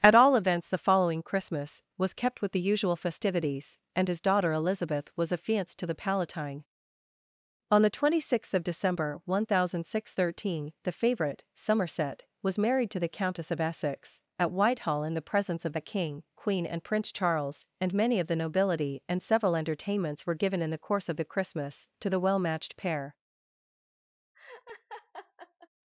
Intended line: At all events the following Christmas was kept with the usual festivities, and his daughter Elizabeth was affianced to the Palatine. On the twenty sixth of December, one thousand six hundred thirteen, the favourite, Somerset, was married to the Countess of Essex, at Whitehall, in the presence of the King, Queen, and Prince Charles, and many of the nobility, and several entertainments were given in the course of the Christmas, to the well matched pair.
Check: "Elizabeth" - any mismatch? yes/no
no